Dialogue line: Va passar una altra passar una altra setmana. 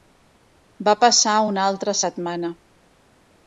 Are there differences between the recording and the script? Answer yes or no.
yes